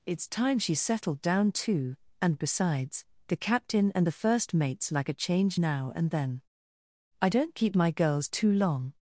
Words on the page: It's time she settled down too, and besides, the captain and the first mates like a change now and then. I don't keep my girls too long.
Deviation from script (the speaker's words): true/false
false